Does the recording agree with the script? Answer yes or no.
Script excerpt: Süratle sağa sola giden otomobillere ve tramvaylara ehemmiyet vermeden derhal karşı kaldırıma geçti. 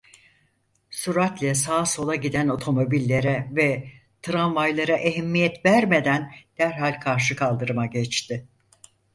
yes